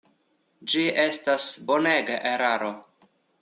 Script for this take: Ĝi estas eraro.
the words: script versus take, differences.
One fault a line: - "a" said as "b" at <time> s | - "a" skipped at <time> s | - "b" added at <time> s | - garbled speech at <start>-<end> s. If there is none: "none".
- "bonega" added at 1.7 s